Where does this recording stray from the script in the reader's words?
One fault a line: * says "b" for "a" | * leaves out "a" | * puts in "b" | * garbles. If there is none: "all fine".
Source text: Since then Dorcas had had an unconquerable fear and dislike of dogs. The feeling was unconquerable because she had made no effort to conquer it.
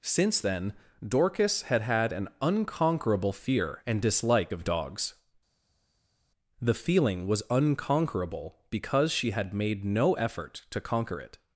all fine